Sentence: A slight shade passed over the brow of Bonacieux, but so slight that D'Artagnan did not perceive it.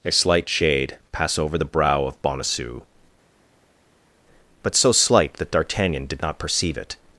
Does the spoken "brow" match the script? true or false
true